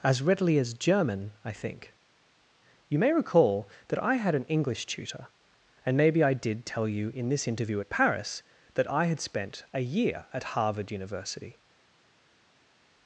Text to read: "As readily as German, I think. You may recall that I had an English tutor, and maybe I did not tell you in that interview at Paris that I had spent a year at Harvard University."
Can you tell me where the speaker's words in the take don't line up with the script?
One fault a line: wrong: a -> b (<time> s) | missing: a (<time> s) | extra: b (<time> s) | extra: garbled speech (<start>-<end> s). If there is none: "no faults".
missing: not (6.7 s)
wrong: that -> this (7.3 s)